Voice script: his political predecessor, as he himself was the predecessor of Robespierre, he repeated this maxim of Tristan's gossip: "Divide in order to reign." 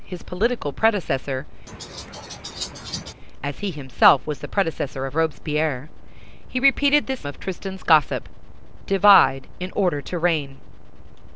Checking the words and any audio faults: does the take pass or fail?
fail